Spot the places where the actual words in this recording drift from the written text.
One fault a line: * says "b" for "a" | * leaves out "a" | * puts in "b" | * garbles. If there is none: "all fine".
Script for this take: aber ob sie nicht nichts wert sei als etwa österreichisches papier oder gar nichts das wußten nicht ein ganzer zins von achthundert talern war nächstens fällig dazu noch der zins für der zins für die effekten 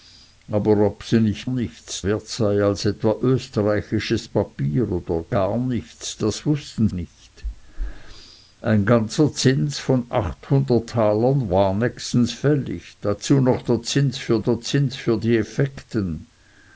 all fine